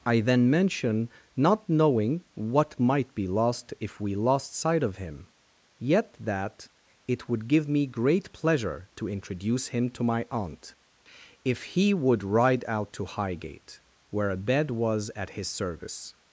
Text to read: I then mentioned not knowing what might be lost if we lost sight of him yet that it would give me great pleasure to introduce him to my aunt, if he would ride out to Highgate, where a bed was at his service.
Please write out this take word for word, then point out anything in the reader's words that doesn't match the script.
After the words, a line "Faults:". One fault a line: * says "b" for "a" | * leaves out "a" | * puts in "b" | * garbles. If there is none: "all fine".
I then mention not knowing what might be lost if we lost sight of him yet that it would give me great pleasure to introduce him to my aunt, if he would ride out to Highgate, where a bed was at his service.
Faults:
* says "mention" for "mentioned"